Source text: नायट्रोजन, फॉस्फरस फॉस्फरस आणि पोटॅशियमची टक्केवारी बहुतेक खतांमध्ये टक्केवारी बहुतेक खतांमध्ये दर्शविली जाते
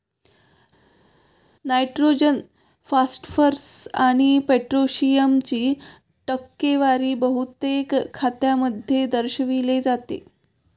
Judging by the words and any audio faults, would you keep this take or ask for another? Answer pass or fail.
fail